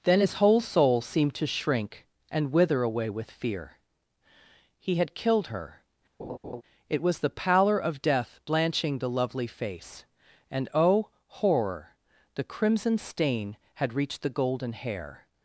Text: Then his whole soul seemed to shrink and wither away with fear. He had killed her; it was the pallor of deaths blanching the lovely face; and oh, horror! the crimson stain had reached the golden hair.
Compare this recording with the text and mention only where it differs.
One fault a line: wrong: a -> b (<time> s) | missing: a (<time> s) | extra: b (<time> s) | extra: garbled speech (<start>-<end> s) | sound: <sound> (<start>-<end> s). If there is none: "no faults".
sound: laugh (6.2-6.6 s)
wrong: deaths -> death (8.0 s)